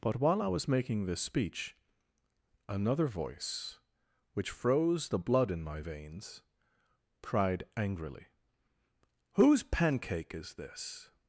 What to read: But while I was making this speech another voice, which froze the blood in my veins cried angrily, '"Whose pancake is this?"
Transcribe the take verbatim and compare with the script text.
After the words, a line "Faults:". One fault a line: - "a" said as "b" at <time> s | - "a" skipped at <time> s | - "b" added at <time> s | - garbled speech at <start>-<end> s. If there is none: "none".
But while I was making this speech another voice, which froze the blood in my veins cried angrily, '"Whose pancake is this?"
Faults:
none